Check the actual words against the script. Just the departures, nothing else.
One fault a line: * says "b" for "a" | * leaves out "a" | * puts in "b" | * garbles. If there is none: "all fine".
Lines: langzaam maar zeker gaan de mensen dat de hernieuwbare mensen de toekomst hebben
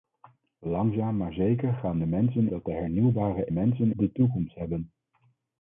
all fine